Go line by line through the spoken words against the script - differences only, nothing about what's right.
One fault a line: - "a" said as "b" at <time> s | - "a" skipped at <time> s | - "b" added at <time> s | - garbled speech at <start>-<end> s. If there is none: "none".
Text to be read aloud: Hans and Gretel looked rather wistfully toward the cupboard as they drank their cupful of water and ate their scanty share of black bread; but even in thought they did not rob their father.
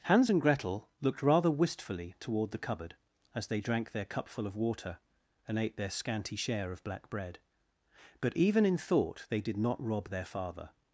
none